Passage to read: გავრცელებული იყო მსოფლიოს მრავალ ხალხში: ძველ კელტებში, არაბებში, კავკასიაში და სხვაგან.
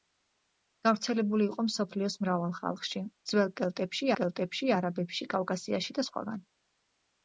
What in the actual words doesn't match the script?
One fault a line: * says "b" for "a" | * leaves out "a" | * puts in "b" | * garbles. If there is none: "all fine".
* puts in "კელტებში"